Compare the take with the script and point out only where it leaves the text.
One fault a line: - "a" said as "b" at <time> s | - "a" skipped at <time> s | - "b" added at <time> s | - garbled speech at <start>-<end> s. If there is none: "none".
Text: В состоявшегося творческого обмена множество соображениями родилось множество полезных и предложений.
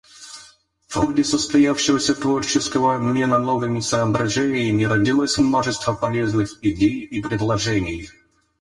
- "ходе" added at 0.9 s
- "множество" said as "новыми" at 3.4 s
- "идей" added at 6.6 s